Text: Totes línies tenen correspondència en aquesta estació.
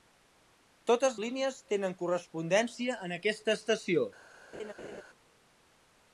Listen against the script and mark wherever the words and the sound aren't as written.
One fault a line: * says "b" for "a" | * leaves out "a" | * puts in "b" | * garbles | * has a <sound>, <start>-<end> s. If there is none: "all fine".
* has a laugh, 4.5-5.0 s